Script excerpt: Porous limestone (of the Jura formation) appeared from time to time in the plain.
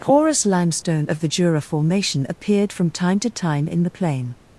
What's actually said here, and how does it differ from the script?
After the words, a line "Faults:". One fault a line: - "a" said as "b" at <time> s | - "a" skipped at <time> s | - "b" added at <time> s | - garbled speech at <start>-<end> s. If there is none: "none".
Porous limestone (of the Jura formation) appeared from time to time in the plain.
Faults:
none